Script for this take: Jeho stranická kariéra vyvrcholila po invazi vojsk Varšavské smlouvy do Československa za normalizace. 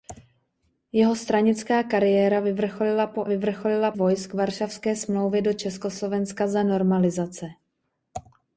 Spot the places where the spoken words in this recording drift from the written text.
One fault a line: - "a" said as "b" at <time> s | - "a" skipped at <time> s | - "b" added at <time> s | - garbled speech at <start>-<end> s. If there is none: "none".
- "invazi" said as "vyvrcholila" at 3.2 s